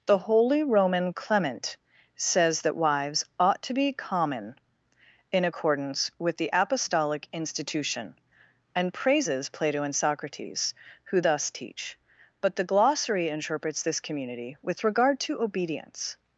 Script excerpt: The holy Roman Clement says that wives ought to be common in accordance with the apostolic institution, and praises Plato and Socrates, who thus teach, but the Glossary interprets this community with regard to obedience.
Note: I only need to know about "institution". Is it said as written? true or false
true